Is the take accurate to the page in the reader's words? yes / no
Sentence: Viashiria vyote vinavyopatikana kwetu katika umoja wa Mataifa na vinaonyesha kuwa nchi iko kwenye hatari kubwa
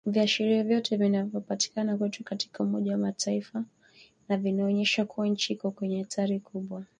yes